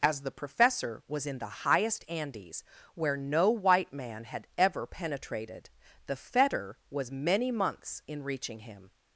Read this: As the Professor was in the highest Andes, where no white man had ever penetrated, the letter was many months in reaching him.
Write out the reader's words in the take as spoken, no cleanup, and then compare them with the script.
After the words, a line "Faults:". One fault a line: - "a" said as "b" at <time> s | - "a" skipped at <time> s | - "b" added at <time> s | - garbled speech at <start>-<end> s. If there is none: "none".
As the Professor was in the highest Andes, where no white man had ever penetrated, the fetter was many months in reaching him.
Faults:
- "letter" said as "fetter" at 6.2 s